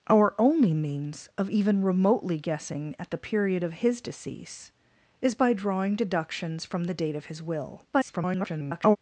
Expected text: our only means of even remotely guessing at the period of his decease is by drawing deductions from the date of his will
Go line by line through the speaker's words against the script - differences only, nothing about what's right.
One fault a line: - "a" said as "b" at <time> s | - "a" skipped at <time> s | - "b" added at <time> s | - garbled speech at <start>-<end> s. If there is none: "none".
- garbled speech at 7.9-9.0 s